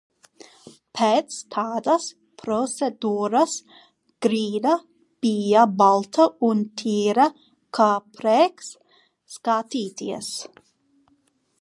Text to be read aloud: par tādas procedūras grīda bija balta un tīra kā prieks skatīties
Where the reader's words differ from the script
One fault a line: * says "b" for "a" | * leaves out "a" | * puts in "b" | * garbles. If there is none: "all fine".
* says "pēc" for "par"